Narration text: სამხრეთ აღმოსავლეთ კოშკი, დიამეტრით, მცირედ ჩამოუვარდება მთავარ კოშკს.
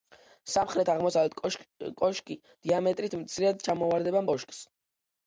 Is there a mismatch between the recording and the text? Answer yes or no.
yes